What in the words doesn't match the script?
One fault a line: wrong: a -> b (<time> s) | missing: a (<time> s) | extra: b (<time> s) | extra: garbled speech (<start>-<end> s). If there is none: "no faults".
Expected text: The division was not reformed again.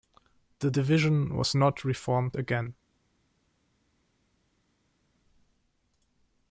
no faults